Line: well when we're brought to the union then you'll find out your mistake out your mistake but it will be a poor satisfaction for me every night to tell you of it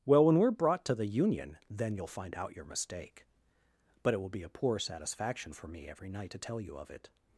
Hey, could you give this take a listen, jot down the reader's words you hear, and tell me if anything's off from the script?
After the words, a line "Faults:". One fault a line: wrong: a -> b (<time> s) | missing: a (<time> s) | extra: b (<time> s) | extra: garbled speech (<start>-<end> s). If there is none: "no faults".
well when we're brought to the union then you'll find out your mistake but it will be a poor satisfaction for me every night to tell you of it
Faults:
missing: out your mistake (3.2 s)